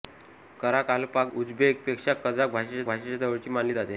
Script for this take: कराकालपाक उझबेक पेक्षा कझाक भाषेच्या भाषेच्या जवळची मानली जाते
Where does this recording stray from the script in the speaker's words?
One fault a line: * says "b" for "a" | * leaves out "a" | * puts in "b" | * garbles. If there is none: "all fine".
all fine